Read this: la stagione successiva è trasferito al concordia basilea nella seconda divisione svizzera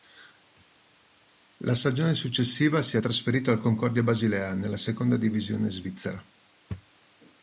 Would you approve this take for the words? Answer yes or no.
no